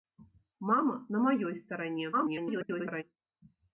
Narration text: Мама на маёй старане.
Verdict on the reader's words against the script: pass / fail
fail